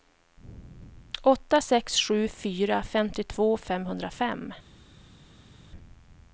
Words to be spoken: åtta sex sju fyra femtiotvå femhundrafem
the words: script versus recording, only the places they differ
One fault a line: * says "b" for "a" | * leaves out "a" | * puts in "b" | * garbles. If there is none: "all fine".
all fine